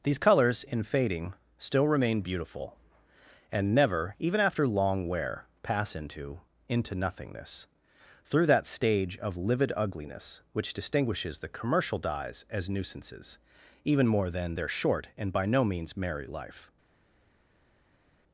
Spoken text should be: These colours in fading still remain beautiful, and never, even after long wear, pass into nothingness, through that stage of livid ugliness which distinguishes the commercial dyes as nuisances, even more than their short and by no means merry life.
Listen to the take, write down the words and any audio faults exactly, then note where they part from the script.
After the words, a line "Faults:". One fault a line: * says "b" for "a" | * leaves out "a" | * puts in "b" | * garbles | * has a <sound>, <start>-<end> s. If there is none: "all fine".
These colours in fading still remain beautiful, and never, even after long wear, pass into into nothingness, through that stage of livid ugliness which distinguishes the commercial dyes as nuisances, even more than their short and by no means merry life.
Faults:
* puts in "into"